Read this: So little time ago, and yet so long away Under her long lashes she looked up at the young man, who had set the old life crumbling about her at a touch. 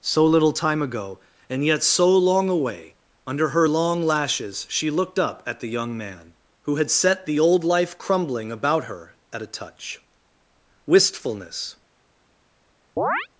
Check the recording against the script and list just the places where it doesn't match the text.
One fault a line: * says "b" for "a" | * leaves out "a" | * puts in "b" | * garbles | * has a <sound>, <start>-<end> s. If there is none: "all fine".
* puts in "Wistfulness"
* has a chirp, 13.0-13.3 s